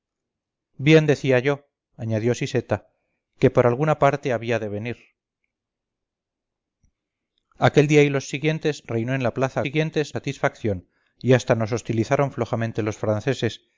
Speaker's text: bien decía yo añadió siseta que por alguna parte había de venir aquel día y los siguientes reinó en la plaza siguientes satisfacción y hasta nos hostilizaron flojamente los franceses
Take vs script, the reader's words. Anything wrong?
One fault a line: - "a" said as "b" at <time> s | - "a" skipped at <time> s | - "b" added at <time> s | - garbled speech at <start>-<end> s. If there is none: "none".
none